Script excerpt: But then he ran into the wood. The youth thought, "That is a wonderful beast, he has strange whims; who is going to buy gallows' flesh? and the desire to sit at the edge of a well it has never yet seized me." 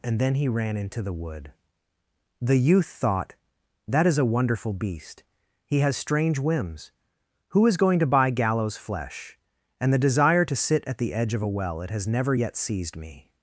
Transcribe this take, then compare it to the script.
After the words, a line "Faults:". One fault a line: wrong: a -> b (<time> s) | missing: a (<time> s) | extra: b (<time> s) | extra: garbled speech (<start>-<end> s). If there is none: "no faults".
And then he ran into the wood. The youth thought, "That is a wonderful beast, he has strange whims; who is going to buy gallows' flesh? and the desire to sit at the edge of a well it has never yet seized me."
Faults:
wrong: But -> And (0.0 s)